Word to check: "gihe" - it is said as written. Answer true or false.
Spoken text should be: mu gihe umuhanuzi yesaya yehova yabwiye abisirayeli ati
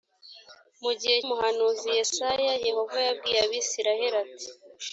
true